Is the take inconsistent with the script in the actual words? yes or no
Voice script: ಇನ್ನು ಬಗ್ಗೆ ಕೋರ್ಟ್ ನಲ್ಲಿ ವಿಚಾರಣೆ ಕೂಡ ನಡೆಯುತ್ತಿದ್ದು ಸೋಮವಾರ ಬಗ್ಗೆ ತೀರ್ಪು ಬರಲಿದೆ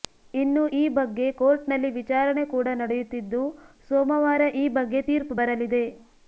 yes